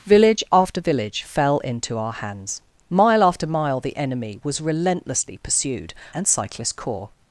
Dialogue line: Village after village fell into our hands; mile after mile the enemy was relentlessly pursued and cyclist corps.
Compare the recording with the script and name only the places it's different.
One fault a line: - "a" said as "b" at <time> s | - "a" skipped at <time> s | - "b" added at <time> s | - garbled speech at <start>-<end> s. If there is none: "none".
none